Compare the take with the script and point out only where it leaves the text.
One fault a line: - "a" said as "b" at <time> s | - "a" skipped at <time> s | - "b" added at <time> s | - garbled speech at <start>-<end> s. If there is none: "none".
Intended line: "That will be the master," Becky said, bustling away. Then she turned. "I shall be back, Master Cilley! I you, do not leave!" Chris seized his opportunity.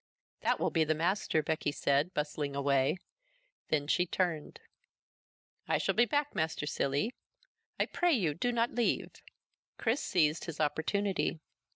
- "pray" added at 7.8 s